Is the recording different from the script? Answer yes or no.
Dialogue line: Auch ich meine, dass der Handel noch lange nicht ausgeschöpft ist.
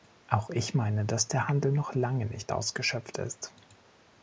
no